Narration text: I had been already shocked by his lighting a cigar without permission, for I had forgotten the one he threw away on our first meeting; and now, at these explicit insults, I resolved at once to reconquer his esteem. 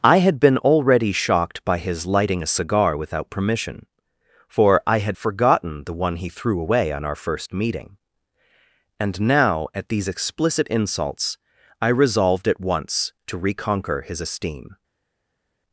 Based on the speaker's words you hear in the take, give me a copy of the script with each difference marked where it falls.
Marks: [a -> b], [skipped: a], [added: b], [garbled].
I had been already shocked by his lighting a cigar without permission, for I had forgotten the one he threw away on our first meeting; and now, at these explicit insults, I resolved at once to reconquer his esteem.